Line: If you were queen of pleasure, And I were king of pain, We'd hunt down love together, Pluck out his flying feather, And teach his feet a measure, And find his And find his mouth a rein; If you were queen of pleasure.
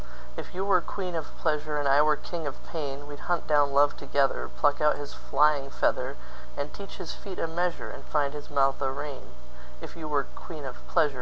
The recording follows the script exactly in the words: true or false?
false